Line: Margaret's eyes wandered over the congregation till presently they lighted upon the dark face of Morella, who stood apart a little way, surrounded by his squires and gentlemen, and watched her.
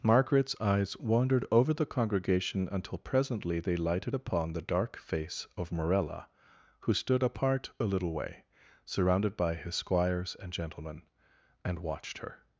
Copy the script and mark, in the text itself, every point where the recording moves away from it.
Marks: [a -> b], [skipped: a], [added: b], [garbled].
Margaret's eyes wandered over the congregation [till -> until] presently they lighted upon the dark face of Morella, who stood apart a little way, surrounded by his squires and gentlemen, and watched her.